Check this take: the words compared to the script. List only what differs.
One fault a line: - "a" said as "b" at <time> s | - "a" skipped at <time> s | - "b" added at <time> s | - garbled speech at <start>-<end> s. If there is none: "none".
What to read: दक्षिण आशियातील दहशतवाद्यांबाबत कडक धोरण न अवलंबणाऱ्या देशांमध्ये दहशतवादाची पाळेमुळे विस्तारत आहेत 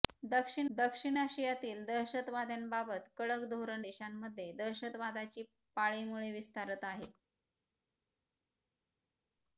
- "दक्षिण" added at 0.7 s
- "न अवलंबणाऱ्या" skipped at 3.8 s